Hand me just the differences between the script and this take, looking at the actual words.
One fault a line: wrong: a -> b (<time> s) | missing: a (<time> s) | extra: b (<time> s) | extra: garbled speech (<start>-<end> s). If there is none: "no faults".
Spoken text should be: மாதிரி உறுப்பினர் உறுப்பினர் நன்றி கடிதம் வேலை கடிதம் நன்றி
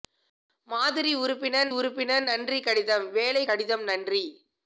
no faults